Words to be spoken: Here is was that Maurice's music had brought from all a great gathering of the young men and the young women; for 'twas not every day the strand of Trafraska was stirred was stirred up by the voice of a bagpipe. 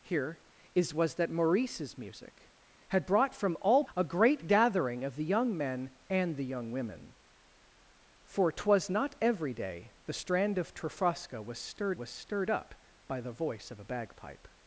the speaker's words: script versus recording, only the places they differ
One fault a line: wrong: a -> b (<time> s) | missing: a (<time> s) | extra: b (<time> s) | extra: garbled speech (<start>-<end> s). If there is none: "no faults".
no faults